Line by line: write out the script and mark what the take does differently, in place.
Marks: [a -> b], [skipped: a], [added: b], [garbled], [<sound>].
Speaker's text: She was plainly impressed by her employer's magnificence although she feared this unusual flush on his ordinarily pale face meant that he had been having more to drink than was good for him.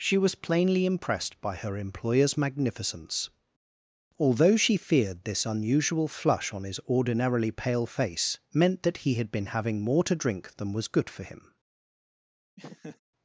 She was plainly impressed by her employer's magnificence although she feared this unusual flush on his ordinarily pale face meant that he had been having more to drink than was good for him. [laugh]